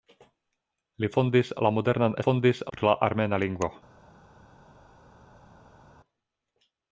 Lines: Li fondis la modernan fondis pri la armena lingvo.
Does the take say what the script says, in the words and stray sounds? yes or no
yes